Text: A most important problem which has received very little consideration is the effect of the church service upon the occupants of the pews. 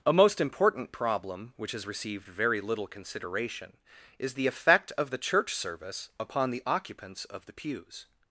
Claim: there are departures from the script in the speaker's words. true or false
false